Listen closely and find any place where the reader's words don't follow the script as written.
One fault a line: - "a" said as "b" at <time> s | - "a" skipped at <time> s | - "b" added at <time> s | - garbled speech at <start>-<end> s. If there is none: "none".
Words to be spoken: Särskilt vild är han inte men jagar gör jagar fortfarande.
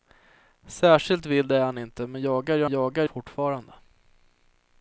none